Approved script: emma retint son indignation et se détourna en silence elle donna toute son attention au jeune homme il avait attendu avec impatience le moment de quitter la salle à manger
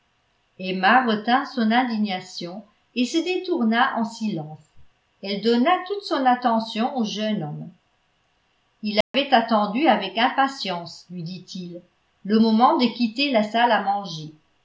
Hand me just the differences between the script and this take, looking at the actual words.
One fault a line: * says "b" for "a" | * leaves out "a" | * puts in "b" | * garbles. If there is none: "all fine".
* puts in "lui dit il"